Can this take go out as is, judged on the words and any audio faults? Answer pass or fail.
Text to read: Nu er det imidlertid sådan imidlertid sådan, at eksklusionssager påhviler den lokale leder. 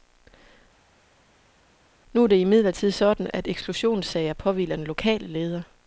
fail